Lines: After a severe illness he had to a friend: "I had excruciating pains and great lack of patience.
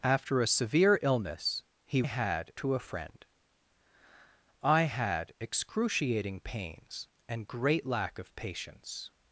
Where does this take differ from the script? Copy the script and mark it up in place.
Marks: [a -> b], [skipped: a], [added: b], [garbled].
After a severe illness he had to a friend: "I had excruciating pains and great lack of patience.